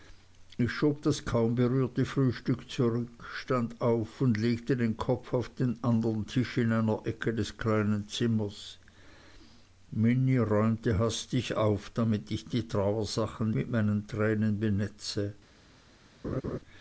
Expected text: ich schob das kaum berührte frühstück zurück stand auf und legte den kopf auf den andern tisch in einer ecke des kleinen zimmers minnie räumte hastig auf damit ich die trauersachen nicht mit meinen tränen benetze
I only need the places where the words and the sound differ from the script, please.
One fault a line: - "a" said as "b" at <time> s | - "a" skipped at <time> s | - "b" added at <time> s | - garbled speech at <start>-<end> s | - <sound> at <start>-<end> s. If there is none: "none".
- "nicht" skipped at 13.5 s
- laugh at 16.2-16.6 s